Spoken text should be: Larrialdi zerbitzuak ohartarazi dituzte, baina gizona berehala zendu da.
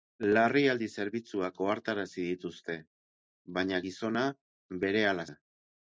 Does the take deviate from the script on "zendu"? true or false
true